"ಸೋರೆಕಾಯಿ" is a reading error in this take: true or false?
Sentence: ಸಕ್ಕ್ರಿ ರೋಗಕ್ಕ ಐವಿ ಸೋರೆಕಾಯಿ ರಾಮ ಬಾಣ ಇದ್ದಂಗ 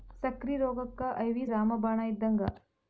true